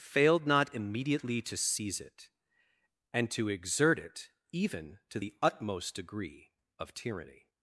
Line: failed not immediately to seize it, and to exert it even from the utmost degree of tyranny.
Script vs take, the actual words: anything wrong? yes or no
yes